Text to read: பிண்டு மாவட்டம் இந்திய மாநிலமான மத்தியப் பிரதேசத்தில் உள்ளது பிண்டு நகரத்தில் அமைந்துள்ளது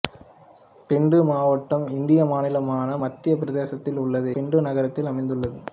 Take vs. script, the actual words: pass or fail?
pass